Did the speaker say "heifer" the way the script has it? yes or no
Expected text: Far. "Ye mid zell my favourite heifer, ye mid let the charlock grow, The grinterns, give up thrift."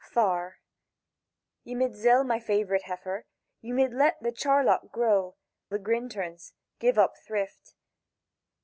yes